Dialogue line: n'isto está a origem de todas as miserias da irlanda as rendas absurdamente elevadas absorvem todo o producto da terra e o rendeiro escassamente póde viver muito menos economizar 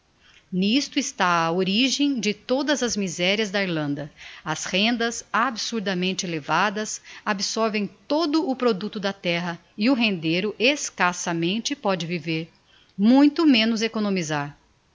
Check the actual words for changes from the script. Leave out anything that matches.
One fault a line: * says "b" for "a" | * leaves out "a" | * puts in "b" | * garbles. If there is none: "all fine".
all fine